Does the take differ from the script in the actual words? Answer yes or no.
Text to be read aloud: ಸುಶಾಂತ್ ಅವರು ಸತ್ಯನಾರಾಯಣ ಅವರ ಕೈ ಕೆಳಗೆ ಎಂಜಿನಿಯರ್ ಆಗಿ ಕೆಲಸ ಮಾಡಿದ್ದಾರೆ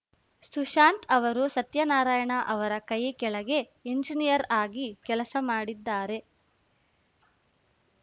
no